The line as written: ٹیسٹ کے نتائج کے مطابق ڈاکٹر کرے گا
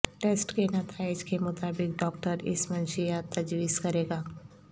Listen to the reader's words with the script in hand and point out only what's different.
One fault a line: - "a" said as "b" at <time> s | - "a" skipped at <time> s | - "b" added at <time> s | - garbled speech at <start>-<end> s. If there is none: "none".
- "اس منشیات تجویز" added at 2.5 s